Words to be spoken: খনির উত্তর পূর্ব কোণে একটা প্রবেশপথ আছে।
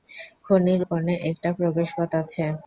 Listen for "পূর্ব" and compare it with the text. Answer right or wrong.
wrong